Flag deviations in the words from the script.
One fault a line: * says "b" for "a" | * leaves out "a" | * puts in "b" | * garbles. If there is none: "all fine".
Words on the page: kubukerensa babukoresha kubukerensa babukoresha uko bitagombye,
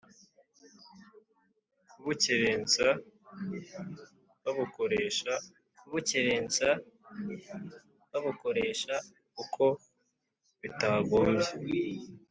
all fine